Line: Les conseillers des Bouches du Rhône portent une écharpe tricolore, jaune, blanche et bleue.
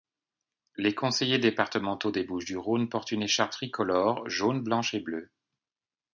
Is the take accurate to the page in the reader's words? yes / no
no